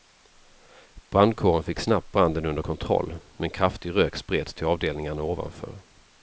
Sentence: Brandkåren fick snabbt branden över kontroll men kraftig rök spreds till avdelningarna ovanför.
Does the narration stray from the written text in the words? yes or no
yes